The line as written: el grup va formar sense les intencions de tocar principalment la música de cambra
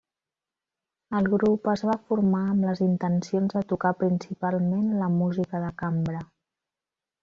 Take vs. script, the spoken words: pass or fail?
fail